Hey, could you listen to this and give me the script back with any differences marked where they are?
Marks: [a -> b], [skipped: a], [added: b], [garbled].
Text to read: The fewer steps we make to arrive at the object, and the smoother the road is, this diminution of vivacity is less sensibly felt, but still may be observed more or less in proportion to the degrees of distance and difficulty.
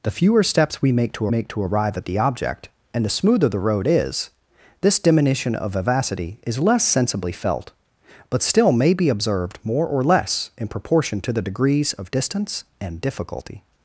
The fewer steps we make to [added: make to] arrive at the object, and the smoother the road is, this diminution of vivacity is less sensibly felt, but still may be observed more or less in proportion to the degrees of distance and difficulty.